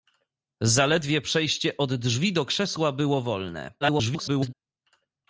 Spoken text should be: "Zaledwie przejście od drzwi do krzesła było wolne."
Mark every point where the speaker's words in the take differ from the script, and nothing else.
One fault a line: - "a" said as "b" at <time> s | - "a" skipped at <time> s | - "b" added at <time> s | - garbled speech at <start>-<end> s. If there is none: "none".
- garbled speech at 3.8-4.5 s